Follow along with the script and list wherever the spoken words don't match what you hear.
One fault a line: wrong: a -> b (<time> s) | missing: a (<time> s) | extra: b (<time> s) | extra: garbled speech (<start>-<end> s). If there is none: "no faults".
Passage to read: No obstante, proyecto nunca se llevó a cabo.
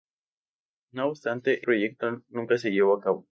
no faults